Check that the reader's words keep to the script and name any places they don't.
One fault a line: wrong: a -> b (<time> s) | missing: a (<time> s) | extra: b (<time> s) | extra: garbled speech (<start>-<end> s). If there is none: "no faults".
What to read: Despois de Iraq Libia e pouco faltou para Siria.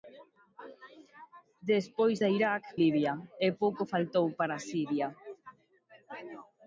no faults